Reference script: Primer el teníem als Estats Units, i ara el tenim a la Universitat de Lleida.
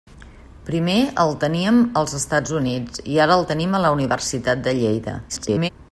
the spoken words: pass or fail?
fail